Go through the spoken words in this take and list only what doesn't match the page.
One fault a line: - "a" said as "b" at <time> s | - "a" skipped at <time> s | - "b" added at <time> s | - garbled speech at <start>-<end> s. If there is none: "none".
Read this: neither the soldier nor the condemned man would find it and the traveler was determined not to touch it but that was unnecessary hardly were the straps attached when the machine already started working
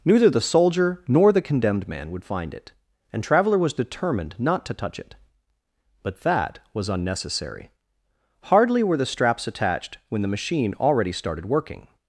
- "the" skipped at 3.2 s